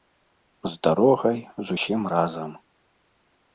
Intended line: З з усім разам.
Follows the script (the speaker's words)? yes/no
no